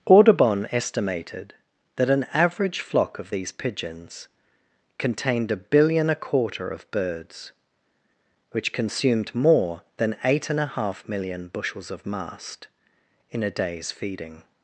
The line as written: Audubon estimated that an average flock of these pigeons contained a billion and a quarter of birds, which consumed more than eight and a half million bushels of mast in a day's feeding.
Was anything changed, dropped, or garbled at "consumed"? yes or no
no